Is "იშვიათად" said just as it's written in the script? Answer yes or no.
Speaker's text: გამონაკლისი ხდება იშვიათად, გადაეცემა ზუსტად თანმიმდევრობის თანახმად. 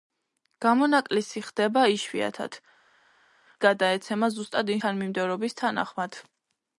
yes